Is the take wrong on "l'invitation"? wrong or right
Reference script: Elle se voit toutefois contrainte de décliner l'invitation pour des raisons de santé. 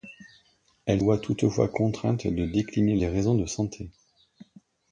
wrong